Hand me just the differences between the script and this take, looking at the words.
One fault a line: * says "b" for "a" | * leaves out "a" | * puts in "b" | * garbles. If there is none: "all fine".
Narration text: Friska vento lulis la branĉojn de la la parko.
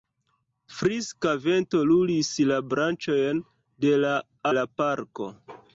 all fine